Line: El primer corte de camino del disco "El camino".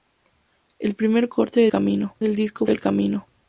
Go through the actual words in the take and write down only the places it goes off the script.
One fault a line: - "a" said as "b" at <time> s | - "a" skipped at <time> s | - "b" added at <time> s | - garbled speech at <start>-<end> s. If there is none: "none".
none